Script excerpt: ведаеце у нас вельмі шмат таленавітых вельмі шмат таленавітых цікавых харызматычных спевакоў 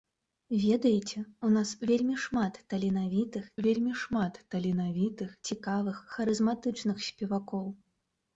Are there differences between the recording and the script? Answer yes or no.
no